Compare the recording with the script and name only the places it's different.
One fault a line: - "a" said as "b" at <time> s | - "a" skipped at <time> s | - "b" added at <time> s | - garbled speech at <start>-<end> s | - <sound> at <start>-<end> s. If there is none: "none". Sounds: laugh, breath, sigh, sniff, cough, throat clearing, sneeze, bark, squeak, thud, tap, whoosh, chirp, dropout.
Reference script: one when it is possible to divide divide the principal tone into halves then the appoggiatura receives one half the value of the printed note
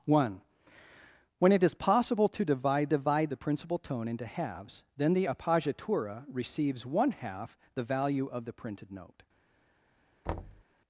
- thud at 10.3-10.6 s